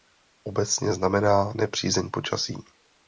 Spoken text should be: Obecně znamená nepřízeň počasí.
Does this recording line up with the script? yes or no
yes